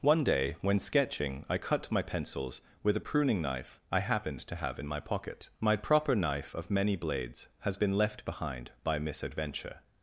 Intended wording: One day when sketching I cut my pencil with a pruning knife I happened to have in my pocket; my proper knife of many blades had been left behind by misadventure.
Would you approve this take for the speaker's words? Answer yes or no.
no